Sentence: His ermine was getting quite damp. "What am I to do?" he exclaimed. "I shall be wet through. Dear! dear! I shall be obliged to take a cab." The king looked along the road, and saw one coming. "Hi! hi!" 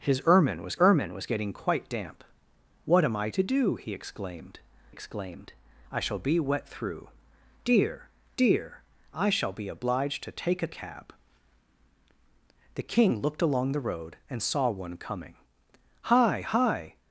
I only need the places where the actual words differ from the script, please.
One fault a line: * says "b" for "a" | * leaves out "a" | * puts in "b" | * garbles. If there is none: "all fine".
* puts in "ermine was"
* puts in "exclaimed"